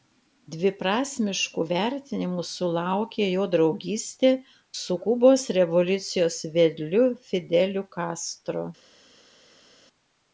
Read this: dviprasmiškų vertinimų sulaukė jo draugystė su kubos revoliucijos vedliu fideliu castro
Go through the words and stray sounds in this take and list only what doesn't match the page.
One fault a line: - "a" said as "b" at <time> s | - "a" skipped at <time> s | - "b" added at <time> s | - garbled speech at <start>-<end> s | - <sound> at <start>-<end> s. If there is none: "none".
none